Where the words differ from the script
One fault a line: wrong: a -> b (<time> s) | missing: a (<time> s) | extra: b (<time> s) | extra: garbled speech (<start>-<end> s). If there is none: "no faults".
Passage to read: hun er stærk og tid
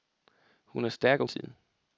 no faults